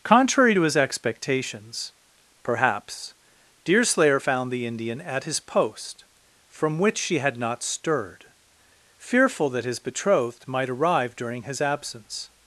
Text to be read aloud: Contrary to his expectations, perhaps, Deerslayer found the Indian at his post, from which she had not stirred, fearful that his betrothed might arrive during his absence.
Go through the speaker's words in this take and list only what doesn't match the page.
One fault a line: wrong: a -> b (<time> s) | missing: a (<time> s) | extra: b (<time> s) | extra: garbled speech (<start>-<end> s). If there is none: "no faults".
no faults